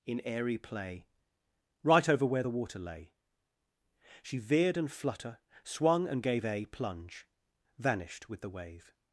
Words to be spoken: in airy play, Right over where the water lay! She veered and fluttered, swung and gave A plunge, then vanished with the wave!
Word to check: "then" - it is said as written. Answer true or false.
false